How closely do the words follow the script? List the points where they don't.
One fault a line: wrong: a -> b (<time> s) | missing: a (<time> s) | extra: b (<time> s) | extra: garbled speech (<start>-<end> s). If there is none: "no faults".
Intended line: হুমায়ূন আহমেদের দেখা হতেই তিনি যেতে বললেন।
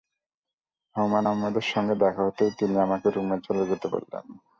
extra: সঙ্গে (1.6 s)
extra: আমাকে রুমে চলে (2.8 s)